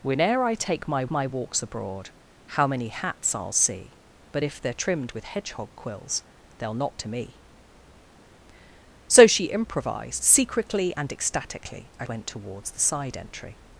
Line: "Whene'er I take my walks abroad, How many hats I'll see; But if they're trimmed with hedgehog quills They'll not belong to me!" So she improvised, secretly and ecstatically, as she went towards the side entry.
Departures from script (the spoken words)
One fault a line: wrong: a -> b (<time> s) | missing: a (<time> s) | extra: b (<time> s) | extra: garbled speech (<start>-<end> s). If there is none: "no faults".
extra: my (1.1 s)
missing: belong (7.0 s)
missing: she (12.1 s)